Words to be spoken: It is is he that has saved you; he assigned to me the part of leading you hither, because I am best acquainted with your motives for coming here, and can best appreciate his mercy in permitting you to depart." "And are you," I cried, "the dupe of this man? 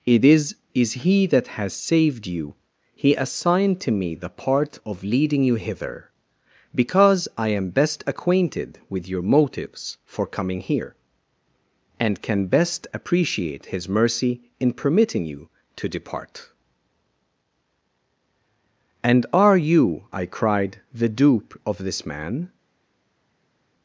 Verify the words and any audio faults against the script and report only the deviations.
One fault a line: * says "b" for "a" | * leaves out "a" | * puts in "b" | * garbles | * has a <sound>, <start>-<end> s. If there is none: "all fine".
all fine